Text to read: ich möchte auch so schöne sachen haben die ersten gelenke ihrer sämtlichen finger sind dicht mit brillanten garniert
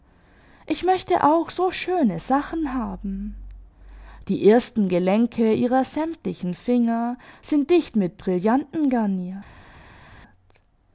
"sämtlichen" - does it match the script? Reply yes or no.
yes